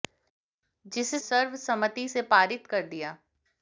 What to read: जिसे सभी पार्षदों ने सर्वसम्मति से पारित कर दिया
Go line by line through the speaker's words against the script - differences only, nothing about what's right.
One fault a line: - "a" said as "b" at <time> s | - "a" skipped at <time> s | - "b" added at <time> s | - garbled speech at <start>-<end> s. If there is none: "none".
- "सभी पार्षदों ने" skipped at 1.2 s